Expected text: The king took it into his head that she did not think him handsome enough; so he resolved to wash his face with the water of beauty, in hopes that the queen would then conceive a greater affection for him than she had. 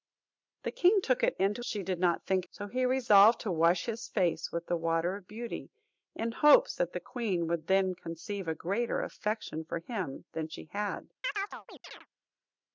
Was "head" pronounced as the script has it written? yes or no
no